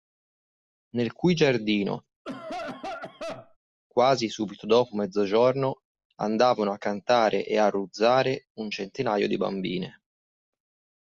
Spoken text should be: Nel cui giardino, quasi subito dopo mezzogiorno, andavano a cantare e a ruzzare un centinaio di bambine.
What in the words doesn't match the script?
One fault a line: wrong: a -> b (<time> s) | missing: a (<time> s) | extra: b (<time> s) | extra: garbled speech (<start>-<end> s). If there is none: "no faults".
no faults